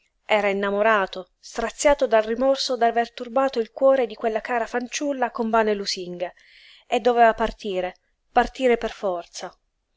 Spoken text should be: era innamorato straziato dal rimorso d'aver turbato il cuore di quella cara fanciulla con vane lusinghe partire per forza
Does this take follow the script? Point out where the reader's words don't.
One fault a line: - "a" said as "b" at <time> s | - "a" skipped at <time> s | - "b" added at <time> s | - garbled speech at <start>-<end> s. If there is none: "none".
- "e doveva partire" added at 6.9 s